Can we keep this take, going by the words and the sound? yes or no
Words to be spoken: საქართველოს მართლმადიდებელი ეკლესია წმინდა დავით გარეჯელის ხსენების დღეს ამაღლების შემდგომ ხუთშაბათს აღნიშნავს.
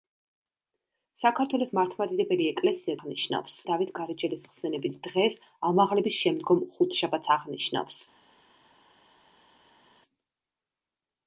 no